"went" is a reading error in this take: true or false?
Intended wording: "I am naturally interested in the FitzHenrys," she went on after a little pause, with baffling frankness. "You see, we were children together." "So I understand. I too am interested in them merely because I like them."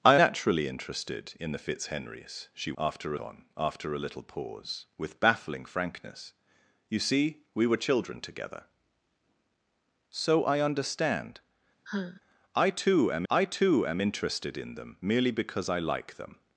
true